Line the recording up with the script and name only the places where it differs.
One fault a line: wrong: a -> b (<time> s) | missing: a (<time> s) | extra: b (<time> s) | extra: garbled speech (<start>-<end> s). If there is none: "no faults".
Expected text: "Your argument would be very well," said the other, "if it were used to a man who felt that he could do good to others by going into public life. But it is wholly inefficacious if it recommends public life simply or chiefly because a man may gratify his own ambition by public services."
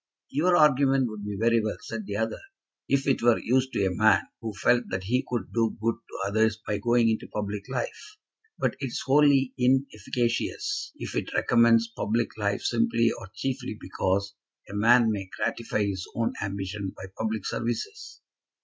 no faults